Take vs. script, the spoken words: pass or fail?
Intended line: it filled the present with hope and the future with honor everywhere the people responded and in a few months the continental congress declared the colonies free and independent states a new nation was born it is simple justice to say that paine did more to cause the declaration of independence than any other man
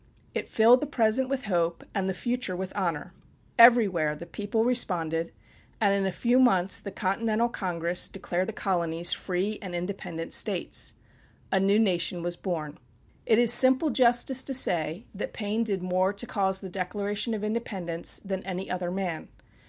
pass